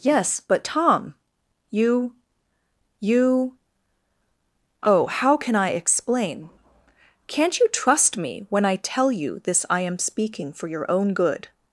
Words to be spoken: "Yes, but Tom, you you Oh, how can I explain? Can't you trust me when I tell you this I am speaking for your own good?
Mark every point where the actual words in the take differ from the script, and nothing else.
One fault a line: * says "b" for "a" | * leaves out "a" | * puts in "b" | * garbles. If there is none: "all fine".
all fine